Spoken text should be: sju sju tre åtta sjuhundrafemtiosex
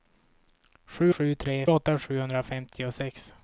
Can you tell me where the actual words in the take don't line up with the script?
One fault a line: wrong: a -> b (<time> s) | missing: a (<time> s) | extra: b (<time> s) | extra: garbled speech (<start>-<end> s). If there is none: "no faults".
no faults